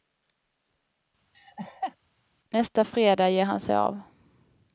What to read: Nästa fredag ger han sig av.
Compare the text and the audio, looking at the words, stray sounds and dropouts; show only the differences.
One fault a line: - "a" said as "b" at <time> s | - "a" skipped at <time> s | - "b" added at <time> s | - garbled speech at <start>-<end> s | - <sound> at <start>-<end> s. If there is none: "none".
- laugh at 1.3-2.0 s